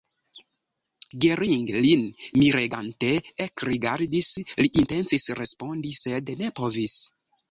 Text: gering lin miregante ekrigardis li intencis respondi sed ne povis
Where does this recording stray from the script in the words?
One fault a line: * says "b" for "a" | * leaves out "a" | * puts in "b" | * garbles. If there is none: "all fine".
all fine